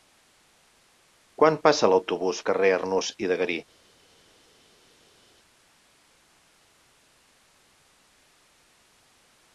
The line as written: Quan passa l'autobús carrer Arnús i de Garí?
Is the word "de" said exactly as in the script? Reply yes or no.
yes